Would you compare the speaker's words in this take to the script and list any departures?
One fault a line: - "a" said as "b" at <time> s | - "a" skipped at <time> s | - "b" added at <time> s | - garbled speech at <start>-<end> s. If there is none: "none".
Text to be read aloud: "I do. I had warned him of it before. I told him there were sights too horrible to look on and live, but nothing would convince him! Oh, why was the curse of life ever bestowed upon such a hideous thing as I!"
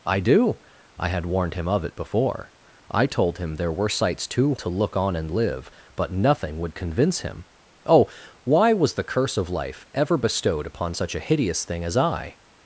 - "horrible" skipped at 4.5 s